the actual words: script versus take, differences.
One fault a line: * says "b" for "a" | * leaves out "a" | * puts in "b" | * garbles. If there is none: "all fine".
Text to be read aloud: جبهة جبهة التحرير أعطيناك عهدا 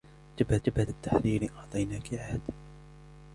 all fine